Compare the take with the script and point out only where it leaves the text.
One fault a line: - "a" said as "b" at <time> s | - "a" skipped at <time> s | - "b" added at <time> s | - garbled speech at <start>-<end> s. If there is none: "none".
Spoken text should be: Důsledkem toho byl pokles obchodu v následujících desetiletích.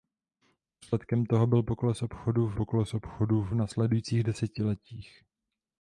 - "pokles obchodu v" added at 2.5 s